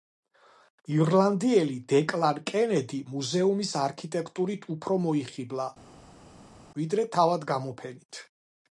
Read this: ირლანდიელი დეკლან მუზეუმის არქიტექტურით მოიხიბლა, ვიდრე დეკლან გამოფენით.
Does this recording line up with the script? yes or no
no